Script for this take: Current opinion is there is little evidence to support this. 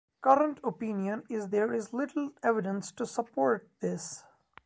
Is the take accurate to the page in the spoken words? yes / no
yes